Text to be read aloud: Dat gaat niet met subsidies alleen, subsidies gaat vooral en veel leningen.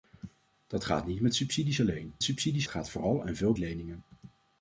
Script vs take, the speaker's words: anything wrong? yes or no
no